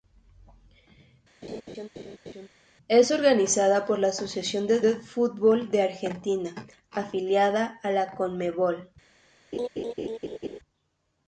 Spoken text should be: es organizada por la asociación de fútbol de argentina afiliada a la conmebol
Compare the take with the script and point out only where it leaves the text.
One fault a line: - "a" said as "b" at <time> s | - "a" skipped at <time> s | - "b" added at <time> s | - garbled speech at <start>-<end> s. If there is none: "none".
- "de" added at 4.8 s